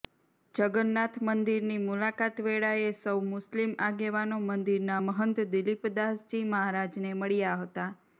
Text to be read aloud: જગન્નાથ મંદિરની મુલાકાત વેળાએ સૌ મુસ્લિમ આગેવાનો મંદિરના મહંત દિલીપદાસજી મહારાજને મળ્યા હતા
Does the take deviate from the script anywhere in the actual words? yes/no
no